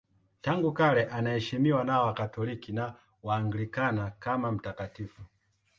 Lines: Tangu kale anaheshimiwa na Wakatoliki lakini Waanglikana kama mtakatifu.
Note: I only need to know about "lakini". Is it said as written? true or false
false